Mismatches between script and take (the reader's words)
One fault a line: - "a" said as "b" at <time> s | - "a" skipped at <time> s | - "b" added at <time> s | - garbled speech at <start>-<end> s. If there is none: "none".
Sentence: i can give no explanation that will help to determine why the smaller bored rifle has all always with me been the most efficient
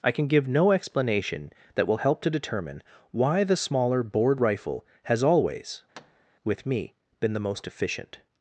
- "all" skipped at 5.2 s